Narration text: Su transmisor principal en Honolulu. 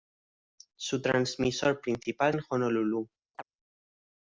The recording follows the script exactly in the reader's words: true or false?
true